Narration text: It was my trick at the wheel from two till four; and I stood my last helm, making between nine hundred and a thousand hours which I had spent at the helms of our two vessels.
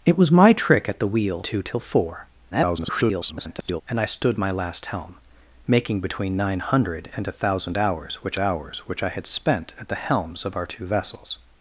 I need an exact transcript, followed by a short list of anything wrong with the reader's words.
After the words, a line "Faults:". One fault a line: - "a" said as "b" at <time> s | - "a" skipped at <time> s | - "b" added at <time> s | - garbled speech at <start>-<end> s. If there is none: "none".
It was my trick at the wheel two till four; [garbled] and I stood my last helm, making between nine hundred and a thousand hours which hours which I had spent at the helms of our two vessels.
Faults:
- "from" skipped at 1.4 s
- garbled speech at 2.5-3.8 s
- "hours which" added at 8.4 s